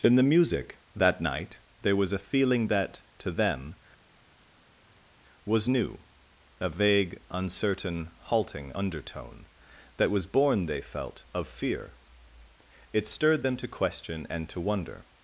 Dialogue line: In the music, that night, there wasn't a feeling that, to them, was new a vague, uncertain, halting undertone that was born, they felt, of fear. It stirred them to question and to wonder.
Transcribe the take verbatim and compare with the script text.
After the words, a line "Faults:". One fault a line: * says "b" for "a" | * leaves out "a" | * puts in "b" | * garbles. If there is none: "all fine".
In the music, that night, there was a feeling that, to them, was new a vague, uncertain, halting undertone that was born, they felt, of fear. It stirred them to question and to wonder.
Faults:
* says "was" for "wasn't"